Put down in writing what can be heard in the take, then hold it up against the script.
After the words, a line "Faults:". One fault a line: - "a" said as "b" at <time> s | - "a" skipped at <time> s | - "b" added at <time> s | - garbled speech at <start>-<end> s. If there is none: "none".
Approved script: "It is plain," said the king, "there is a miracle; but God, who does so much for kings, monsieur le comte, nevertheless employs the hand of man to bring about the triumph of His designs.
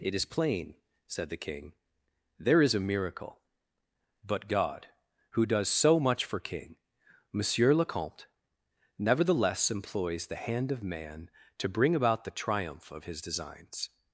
"It is plain," said the king, "there is a miracle; but God, who does so much for king, monsieur le comte, nevertheless employs the hand of man to bring about the triumph of His designs.
Faults:
- "kings" said as "king" at 6.4 s